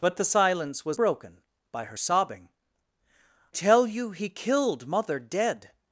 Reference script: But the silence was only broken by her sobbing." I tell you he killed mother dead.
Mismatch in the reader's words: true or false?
true